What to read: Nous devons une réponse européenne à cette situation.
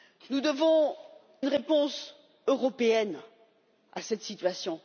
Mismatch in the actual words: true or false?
false